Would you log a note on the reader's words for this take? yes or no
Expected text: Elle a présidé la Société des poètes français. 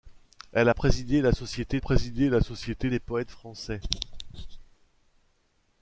yes